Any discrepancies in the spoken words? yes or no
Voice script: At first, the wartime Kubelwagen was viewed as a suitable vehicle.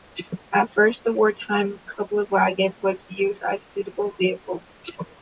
no